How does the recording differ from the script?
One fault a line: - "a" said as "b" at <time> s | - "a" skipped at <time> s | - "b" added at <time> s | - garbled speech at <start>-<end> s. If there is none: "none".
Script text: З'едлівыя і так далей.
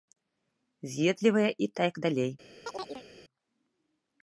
none